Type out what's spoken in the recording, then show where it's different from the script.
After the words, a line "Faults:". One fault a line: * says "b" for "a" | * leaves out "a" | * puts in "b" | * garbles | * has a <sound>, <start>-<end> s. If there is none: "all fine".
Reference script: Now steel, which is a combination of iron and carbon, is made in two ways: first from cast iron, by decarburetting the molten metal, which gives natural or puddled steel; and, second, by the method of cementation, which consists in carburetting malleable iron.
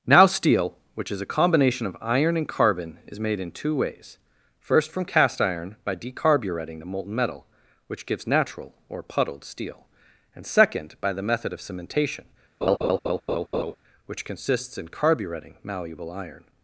Now steel, which is a combination of iron and carbon, is made in two ways: first from cast iron, by decarburetting the molten metal, which gives natural or puddled steel; and, second, by the method of cementation, which consists in carburetting malleable iron.
Faults:
* has a laugh, 12.6-13.8 s